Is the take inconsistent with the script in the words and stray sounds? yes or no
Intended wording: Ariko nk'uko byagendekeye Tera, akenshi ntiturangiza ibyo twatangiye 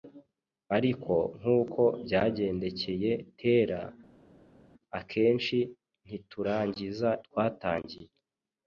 yes